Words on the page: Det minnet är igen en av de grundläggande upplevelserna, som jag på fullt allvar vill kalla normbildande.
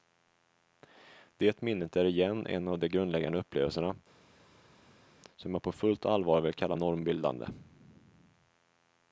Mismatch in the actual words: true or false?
false